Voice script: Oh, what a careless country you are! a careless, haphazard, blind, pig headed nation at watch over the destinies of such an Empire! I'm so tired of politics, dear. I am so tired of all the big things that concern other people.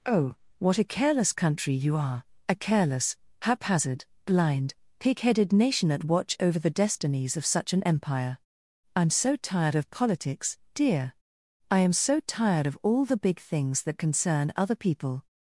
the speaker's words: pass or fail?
pass